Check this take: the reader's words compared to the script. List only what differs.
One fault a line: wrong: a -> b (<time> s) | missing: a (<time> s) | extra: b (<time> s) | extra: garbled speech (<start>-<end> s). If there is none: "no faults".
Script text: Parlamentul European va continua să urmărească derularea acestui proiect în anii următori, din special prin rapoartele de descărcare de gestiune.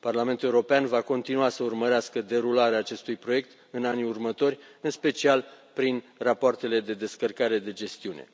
wrong: din -> în (4.8 s)